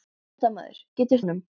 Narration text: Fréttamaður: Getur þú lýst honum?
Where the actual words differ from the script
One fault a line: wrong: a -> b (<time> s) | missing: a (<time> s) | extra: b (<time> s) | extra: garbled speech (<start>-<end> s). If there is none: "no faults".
missing: þú lýst (1.2 s)